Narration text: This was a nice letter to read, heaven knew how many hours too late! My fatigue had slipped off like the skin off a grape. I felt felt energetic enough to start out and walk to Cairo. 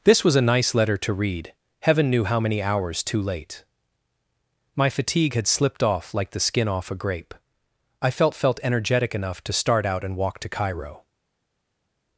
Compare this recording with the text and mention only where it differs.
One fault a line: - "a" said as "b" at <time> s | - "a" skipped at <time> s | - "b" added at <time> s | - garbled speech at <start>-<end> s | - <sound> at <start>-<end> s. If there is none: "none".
none